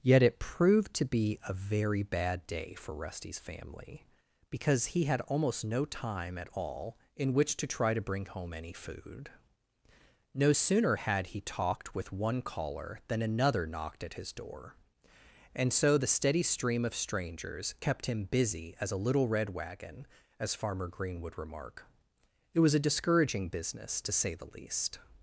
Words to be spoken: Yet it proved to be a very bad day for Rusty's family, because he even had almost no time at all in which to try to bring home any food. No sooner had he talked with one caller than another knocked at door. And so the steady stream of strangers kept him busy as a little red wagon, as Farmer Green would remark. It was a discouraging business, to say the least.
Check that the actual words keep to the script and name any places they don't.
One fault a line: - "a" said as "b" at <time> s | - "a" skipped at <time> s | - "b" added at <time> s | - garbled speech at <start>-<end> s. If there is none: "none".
- "even" skipped at 5.0 s
- "his" added at 14.1 s